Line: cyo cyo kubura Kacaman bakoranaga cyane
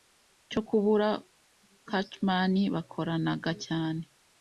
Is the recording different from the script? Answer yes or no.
yes